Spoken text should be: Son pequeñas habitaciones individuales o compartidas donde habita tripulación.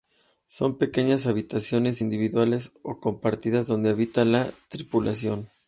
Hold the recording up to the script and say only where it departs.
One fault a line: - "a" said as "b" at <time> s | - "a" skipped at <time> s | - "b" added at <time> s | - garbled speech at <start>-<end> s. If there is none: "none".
- "la" added at 4.2 s